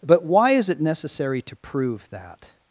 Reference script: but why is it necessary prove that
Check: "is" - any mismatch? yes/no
no